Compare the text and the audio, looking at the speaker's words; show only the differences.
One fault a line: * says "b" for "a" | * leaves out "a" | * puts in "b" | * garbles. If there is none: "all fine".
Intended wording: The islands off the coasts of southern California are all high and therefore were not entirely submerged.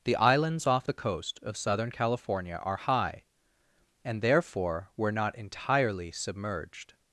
* says "coast" for "coasts"
* leaves out "all"